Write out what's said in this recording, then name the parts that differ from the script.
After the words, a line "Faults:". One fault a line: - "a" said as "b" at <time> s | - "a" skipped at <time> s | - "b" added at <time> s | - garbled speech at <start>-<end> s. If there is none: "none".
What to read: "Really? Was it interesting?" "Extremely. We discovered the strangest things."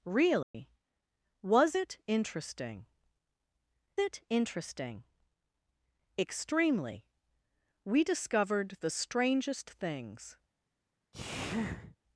"Really? Was it interesting it interesting?" "Extremely. We discovered the strangest things."
Faults:
- "it interesting" added at 4.0 s